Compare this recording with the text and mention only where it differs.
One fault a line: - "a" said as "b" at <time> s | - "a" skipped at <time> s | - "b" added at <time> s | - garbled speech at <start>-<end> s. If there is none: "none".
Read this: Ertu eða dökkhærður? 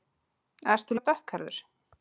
none